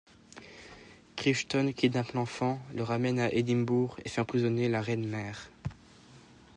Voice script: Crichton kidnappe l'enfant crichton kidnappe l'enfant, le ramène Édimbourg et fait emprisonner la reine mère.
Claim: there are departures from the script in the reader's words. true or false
true